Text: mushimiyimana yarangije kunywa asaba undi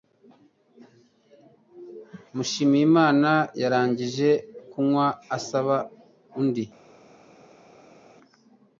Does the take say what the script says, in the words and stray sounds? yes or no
yes